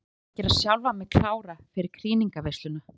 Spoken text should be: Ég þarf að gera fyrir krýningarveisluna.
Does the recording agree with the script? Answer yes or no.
no